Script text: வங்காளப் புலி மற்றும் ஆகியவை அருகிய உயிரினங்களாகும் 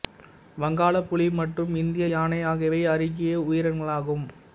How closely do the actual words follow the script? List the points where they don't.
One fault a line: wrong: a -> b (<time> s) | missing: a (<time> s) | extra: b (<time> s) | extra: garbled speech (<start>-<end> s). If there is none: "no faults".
extra: இந்திய யானை (1.8 s)